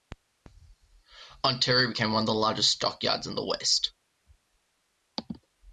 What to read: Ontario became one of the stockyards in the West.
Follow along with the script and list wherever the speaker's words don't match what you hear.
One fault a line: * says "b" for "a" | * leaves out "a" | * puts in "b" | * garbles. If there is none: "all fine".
* puts in "largest"